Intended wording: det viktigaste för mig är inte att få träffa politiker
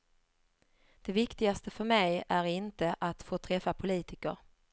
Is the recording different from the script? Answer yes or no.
no